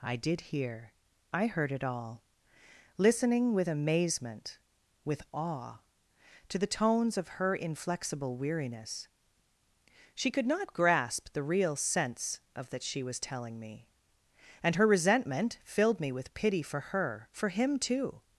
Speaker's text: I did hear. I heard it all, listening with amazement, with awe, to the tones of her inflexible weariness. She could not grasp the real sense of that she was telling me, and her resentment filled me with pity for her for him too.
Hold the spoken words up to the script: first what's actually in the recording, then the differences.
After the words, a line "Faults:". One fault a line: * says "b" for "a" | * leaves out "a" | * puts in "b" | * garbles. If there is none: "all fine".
I did hear. I heard it all, listening with amazement, with awe, to the tones of her inflexible weariness. She could not grasp the real sense of that she was telling me, and her resentment filled me with pity for her for him too.
Faults:
all fine